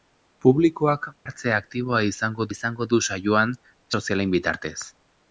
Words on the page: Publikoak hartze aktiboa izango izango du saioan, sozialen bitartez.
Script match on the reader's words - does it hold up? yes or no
yes